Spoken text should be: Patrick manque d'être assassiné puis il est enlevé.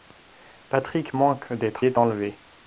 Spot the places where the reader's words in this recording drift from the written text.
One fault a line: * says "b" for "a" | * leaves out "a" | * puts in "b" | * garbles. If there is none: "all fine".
* leaves out "assassiné puis il"